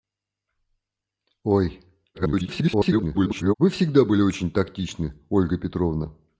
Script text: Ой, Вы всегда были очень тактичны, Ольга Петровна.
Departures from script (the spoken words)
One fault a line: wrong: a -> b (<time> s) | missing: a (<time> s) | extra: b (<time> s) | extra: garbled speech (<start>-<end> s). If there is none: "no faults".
extra: garbled speech (2.1-3.5 s)